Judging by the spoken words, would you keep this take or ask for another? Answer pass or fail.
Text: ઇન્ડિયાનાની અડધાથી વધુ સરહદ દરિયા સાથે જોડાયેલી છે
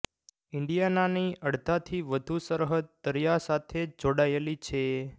pass